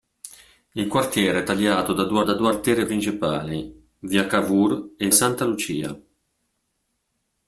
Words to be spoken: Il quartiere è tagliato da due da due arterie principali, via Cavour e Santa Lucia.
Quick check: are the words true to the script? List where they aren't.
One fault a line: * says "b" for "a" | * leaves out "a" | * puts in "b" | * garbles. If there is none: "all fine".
all fine